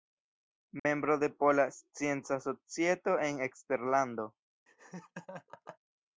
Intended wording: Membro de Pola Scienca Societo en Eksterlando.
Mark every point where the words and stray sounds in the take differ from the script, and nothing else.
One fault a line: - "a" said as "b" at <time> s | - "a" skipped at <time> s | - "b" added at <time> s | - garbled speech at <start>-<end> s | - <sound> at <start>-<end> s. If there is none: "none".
- dropout at 0.8-0.8 s
- laugh at 4.7-5.8 s